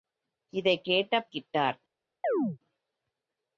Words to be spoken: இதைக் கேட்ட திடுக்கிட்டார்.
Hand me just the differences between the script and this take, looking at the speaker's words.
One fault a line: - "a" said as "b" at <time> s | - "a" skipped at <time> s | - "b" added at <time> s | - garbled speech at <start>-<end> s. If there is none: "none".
none